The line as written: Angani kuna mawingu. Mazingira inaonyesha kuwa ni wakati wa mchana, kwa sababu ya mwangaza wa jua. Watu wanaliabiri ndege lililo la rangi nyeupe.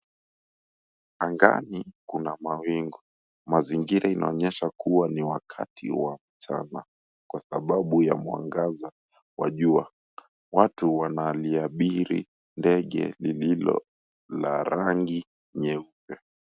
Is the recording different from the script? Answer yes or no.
no